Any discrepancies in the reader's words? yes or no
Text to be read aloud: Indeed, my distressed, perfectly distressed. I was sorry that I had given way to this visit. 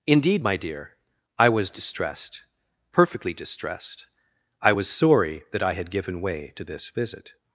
yes